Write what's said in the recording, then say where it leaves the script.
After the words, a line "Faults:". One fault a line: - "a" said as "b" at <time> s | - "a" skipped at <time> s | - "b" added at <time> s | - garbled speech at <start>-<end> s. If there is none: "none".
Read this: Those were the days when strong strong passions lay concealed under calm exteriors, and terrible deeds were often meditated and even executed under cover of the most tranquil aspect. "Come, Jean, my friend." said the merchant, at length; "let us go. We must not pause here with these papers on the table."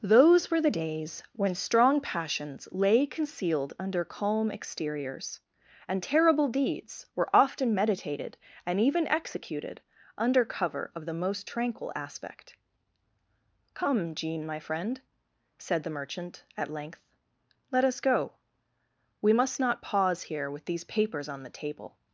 Those were the days when strong passions lay concealed under calm exteriors, and terrible deeds were often meditated and even executed under cover of the most tranquil aspect. "Come, Jean, my friend." said the merchant, at length; "let us go. We must not pause here with these papers on the table."
Faults:
- "strong" skipped at 2.0 s